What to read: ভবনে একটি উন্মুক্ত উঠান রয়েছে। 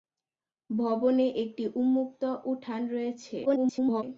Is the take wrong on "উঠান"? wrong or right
right